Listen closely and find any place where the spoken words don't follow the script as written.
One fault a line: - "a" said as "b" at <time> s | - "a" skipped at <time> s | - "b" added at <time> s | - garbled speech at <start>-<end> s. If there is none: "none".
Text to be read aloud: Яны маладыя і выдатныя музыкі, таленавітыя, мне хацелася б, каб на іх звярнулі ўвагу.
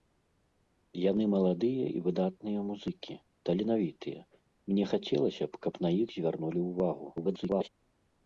- garbled speech at 7.2-7.7 s